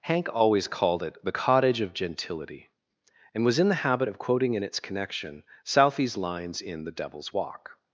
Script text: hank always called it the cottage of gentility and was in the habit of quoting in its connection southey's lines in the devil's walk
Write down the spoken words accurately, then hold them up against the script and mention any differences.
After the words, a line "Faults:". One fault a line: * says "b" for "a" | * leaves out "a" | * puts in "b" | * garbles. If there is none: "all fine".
hank always called it the cottage of gentility and was in the habit of quoting in its connection southey's lines in the devil's walk
Faults:
all fine